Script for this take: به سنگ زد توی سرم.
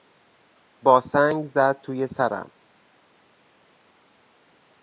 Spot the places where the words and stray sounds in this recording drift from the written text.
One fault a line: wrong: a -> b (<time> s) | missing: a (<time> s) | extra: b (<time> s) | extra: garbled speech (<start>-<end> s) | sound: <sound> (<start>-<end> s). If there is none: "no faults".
wrong: به -> با (0.8 s)